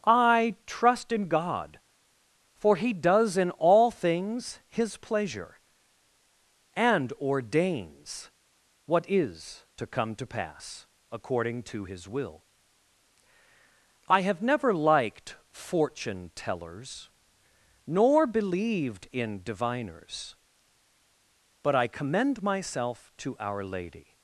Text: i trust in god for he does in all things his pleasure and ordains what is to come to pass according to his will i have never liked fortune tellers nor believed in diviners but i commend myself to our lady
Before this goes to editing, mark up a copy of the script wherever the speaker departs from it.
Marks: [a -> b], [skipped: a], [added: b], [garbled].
i trust in god for he does in all things his pleasure and ordains what is to come to pass according to his will i have never liked fortune tellers nor believed in diviners but i commend myself to our lady